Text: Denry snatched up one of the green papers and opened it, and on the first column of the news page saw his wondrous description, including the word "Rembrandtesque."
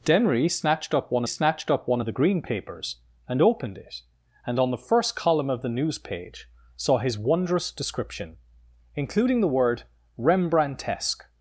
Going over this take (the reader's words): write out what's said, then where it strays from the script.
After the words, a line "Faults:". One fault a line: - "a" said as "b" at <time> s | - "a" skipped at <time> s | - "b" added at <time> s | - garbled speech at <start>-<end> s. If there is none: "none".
Denry snatched up one snatched up one of the green papers and opened it, and on the first column of the news page saw his wondrous description, including the word "Rembrandtesque."
Faults:
- "snatched up one" added at 1.3 s